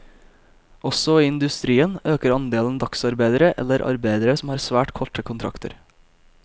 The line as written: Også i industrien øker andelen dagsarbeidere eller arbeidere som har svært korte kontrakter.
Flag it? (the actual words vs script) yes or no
no